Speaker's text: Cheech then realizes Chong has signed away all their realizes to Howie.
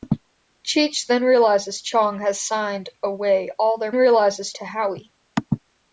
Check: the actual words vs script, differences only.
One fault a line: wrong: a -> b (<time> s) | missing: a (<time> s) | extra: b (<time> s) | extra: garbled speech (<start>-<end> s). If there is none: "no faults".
no faults